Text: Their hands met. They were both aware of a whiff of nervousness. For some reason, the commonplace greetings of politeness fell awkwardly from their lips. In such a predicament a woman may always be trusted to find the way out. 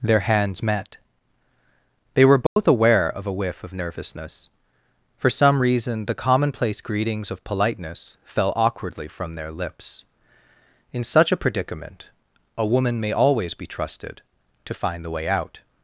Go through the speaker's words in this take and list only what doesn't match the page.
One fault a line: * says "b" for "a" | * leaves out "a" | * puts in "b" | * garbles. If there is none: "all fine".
all fine